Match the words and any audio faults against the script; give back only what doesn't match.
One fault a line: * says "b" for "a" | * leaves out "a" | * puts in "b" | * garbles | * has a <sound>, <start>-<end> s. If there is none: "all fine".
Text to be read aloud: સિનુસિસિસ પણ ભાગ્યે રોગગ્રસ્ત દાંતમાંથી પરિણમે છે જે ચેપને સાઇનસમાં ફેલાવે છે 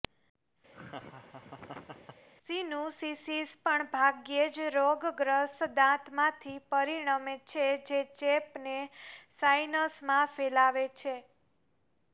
* has a laugh, 0.7-2.3 s
* puts in "જ"